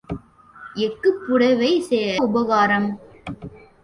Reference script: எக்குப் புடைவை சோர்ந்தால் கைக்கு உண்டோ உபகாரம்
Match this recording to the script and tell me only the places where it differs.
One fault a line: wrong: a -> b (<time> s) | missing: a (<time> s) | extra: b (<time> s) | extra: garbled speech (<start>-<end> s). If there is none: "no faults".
missing: சோர்ந்தால் கைக்கு உண்டோ (1.7 s)